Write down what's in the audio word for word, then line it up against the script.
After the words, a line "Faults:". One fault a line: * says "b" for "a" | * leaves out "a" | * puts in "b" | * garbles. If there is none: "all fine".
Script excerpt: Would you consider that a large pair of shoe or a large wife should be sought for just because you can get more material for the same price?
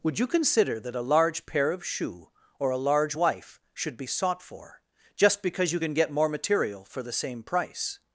Would you consider that a large pair of shoe or a large wife should be sought for just because you can get more material for the same price?
Faults:
all fine